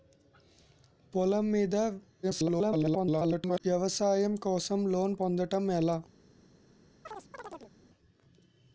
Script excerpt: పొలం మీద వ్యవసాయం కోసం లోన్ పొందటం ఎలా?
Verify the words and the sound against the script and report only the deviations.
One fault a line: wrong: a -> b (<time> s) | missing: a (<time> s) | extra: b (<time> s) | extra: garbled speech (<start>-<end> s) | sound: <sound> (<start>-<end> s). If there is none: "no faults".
extra: garbled speech (2.2-3.6 s)
sound: chirp (7.0-7.7 s)